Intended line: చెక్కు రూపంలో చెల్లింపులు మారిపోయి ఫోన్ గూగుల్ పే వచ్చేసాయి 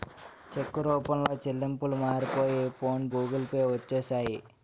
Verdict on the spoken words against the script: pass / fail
pass